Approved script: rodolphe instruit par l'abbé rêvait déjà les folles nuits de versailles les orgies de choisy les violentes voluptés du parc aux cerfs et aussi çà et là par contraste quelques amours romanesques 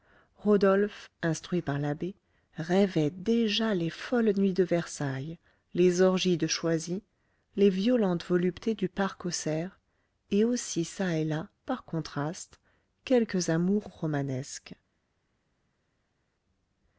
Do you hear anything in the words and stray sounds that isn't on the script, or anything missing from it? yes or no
no